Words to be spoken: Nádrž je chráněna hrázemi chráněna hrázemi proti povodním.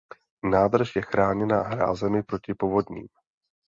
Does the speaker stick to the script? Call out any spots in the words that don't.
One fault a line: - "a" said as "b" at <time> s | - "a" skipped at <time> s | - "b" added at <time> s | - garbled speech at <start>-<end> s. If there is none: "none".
- "chráněna hrázemi" skipped at 2.2 s